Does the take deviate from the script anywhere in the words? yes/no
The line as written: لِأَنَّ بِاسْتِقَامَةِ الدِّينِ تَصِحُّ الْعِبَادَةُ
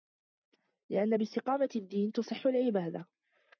no